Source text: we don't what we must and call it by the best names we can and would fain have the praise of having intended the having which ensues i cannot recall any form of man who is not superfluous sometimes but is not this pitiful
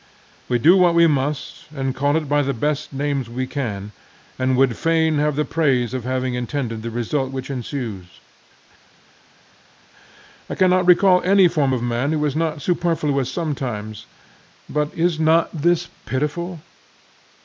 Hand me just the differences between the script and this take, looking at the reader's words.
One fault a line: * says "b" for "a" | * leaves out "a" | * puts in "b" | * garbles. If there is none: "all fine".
* says "do" for "don't"
* says "result" for "having"